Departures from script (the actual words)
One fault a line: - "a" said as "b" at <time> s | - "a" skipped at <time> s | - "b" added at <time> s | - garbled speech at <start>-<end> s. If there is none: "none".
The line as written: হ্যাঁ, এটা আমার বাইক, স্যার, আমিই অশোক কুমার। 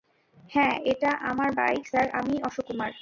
none